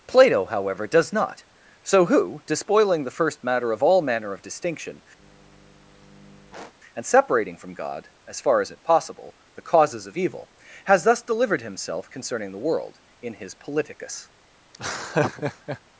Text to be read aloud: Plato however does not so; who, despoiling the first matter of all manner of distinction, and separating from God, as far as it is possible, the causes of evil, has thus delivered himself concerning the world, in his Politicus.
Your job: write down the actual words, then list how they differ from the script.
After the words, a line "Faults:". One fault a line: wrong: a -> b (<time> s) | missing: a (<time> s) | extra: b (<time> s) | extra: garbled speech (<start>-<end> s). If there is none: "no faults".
Plato however does not so; who, despoiling the first matter of all manner of distinction, and separating from God, as far as it possible, the causes of evil, has thus delivered himself concerning the world, in his Politicus.
Faults:
missing: is (8.8 s)